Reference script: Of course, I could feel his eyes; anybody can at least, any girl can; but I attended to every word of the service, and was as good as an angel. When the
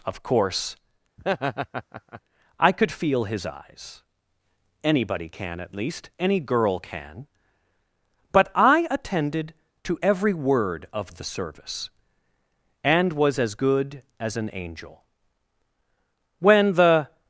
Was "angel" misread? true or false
false